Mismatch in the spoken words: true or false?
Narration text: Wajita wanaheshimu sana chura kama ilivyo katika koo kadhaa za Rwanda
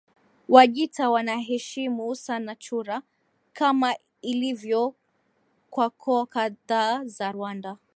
true